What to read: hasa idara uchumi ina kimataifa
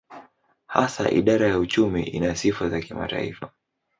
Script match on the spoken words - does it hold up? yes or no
no